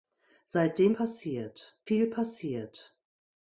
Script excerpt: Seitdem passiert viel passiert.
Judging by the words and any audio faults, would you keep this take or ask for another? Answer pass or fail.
pass